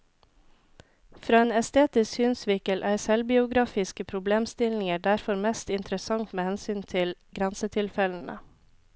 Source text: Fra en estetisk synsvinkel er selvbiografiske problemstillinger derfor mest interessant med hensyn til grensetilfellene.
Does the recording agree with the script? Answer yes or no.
yes